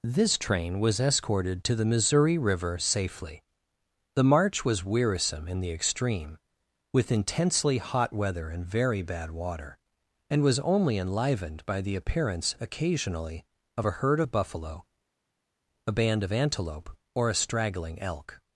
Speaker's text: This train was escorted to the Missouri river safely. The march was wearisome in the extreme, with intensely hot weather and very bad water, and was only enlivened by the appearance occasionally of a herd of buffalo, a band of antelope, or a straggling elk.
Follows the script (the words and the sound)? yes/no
yes